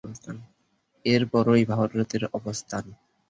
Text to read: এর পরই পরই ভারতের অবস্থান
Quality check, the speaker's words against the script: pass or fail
fail